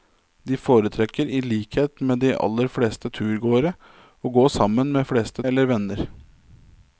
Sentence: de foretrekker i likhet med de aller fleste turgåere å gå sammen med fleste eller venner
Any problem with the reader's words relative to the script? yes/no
no